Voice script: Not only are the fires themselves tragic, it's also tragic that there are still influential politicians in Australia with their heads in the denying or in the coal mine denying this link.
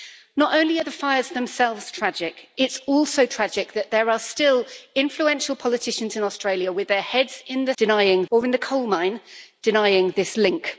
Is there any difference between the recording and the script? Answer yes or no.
no